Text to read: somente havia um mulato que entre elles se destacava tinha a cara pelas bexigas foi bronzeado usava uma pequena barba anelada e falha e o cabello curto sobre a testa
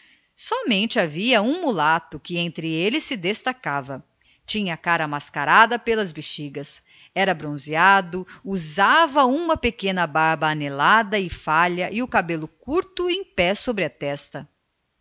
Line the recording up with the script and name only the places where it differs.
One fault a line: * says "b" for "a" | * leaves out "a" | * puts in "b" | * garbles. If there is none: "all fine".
* puts in "mascarada"
* says "era" for "foi"
* puts in "em pé"